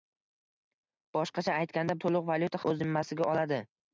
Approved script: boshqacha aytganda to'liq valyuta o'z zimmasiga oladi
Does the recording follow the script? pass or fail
pass